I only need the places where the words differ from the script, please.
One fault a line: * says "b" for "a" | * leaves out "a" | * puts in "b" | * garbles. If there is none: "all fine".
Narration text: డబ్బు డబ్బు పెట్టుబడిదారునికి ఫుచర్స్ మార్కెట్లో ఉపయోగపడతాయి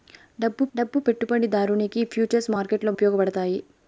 all fine